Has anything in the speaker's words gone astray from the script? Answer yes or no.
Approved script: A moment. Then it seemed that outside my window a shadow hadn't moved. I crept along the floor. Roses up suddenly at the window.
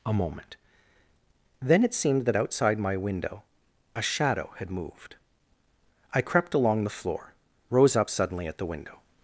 yes